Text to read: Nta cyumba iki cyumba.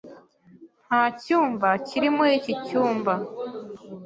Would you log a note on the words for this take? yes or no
yes